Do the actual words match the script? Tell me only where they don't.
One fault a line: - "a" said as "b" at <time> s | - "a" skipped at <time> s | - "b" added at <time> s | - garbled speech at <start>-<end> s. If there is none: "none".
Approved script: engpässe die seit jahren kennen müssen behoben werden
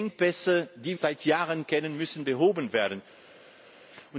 none